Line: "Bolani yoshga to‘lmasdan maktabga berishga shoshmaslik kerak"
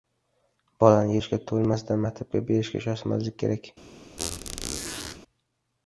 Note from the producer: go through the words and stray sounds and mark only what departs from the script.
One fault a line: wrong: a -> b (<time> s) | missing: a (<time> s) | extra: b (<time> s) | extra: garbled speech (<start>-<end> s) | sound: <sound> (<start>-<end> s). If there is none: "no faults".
sound: squeak (4.2-5.2 s)